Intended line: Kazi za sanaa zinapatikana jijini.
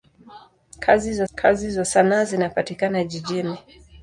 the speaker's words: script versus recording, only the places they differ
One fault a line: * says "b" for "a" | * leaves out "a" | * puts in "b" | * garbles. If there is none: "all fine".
* puts in "kazi za"